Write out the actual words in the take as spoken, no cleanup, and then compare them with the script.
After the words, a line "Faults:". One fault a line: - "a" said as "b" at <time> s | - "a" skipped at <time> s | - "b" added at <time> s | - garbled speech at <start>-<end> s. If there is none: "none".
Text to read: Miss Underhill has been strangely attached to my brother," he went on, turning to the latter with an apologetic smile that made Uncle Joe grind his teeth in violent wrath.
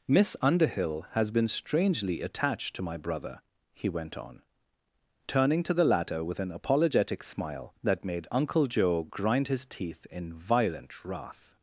Miss Underhill has been strangely attached to my brother," he went on, turning to the latter with an apologetic smile that made Uncle Joe grind his teeth in violent wrath.
Faults:
none